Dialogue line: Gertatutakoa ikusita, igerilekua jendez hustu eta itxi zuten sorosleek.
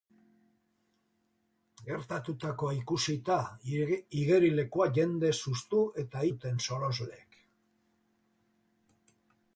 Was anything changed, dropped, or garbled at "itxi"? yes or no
yes